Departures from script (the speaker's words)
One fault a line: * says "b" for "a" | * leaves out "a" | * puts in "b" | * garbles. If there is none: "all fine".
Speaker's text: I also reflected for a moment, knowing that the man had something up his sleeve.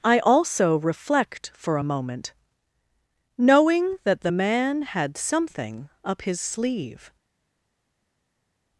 * says "reflect" for "reflected"